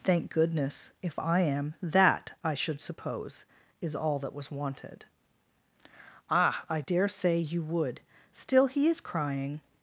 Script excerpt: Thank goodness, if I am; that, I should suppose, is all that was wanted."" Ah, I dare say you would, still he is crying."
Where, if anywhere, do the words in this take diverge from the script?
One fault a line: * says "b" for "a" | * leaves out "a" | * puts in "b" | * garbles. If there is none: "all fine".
all fine